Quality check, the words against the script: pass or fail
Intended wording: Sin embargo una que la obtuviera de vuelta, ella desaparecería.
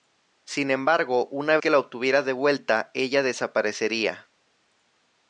pass